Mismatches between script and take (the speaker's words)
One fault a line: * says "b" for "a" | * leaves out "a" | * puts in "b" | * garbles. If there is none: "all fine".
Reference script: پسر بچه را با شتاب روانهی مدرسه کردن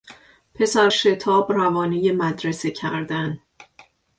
* leaves out "بچه را با"